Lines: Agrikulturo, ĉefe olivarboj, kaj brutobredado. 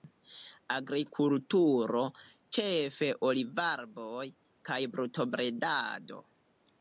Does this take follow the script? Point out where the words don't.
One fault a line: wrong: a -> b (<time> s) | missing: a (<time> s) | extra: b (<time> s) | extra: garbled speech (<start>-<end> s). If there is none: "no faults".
no faults